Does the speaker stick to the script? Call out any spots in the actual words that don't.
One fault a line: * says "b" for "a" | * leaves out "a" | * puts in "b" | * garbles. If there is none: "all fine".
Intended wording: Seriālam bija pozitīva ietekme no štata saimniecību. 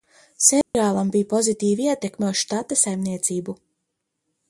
* says "uz" for "no"